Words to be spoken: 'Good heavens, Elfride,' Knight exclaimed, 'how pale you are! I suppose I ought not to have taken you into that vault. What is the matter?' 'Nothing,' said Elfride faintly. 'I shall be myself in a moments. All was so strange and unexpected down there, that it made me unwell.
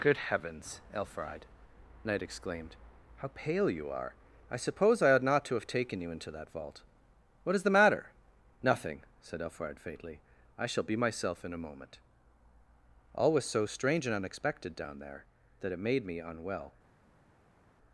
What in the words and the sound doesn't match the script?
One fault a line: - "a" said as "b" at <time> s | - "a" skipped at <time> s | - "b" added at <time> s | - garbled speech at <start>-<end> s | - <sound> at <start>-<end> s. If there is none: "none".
- "moments" said as "moment" at 11.7 s